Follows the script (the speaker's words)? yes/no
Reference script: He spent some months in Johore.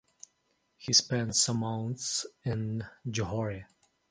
yes